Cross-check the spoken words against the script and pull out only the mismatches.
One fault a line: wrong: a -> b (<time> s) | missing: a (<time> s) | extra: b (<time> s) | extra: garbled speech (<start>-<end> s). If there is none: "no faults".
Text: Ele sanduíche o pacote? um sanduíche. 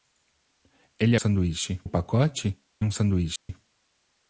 no faults